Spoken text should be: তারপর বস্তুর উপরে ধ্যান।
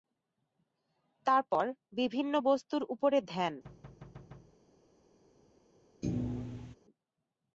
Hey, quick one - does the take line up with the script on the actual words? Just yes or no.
no